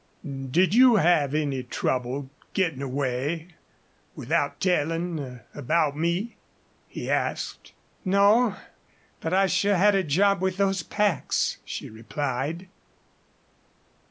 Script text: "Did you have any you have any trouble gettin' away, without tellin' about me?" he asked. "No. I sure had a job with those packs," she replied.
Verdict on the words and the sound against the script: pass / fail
fail